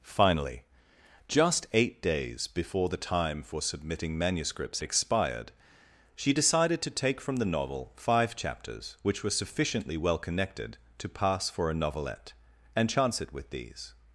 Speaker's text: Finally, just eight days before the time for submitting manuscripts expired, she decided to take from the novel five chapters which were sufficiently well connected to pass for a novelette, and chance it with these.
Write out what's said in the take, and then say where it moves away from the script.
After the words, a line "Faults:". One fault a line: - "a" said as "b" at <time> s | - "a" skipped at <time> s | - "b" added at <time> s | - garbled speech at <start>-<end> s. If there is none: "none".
Finally, just eight days before the time for submitting manuscripts expired, she decided to take from the novel five chapters which were sufficiently well connected to pass for a novelette, and chance it with these.
Faults:
none